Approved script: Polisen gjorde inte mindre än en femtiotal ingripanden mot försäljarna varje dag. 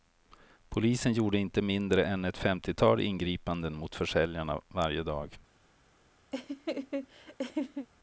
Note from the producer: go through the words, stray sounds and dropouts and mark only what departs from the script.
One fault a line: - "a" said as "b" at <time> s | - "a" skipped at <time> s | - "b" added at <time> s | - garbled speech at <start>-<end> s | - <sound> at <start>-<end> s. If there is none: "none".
- "en" said as "ett" at 2.2 s
- laugh at 6.3-7.9 s